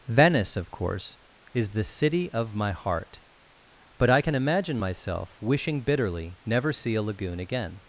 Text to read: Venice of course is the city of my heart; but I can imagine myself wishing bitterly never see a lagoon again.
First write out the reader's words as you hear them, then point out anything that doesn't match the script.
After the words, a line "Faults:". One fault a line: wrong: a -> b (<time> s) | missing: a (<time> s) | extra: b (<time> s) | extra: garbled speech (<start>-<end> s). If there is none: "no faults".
Venice of course is the city of my heart; but I can imagine myself wishing bitterly never see a lagoon again.
Faults:
no faults